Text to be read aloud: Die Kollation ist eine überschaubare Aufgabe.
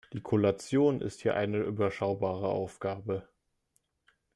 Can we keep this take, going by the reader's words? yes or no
no